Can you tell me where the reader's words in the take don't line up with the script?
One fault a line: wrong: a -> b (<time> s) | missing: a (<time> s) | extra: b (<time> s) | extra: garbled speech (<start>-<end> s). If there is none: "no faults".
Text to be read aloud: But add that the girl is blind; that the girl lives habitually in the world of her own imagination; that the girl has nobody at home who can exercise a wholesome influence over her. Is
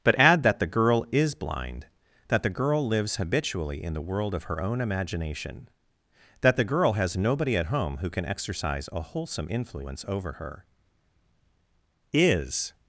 no faults